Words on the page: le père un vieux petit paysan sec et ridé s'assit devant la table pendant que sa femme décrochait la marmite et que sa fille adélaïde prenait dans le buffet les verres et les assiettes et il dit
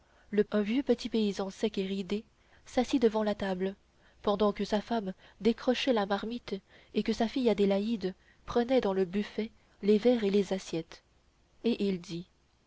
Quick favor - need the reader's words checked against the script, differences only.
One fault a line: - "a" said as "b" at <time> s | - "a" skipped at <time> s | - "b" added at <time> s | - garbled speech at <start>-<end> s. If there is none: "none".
- "père" skipped at 0.4 s